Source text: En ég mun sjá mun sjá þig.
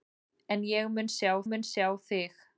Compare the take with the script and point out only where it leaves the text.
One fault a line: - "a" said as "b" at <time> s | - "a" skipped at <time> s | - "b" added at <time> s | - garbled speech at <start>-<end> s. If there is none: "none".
none